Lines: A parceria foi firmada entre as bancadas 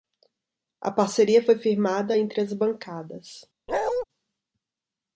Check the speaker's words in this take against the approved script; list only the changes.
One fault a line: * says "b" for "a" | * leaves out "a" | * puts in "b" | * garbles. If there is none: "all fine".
all fine